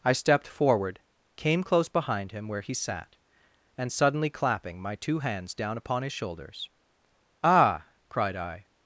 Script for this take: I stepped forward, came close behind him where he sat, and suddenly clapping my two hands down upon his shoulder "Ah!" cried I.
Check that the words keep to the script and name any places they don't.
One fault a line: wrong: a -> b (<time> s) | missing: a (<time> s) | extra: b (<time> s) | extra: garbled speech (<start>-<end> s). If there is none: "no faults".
wrong: shoulder -> shoulders (6.1 s)